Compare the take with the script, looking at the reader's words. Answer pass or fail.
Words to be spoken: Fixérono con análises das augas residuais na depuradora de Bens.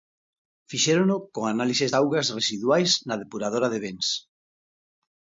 fail